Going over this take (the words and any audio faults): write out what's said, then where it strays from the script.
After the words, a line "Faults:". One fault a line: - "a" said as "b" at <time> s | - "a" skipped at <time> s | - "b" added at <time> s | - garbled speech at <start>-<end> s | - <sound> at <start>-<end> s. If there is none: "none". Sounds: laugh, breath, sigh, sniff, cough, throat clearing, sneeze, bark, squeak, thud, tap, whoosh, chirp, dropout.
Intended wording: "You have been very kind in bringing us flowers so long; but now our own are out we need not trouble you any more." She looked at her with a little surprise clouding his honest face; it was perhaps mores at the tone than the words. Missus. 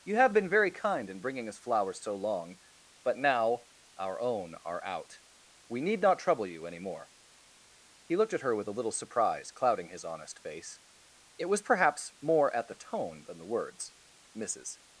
"You have been very kind in bringing us flowers so long; but now our own are out we need not trouble you any more." He looked at her with a little surprise clouding his honest face; it was perhaps more at the tone than the words. Missus.
Faults:
- "She" said as "He" at 8.0 s
- "mores" said as "more" at 12.2 s